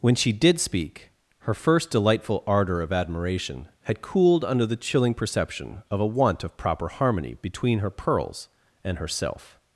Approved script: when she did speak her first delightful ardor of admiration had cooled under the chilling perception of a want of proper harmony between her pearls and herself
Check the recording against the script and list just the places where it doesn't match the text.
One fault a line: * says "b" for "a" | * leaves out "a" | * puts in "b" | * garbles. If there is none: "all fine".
all fine